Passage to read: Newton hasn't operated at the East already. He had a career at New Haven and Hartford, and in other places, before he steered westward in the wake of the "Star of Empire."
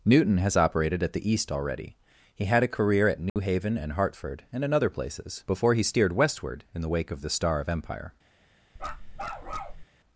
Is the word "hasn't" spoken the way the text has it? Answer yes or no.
no